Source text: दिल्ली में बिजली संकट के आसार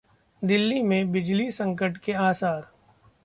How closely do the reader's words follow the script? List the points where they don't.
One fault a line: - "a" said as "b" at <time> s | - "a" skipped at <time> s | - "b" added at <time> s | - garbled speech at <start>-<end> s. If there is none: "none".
none